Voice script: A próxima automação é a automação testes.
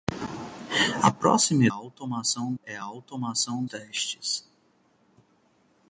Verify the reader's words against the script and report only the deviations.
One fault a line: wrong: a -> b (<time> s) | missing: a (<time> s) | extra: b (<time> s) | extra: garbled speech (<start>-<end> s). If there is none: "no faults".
no faults